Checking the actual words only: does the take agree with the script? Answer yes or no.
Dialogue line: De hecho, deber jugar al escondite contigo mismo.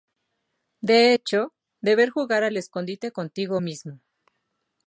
yes